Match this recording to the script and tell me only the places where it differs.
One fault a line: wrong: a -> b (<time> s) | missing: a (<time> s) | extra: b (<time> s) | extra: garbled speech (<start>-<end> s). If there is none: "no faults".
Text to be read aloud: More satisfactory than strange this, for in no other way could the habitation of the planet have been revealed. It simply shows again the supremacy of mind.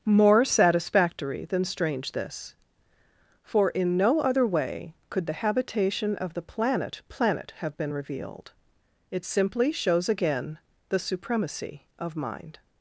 extra: planet (7.1 s)